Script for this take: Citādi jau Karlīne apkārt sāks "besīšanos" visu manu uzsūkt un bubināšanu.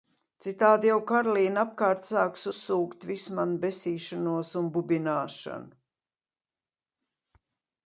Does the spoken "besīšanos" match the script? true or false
false